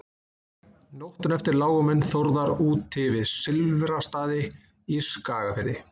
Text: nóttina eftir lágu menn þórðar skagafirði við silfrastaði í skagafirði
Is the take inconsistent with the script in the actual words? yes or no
yes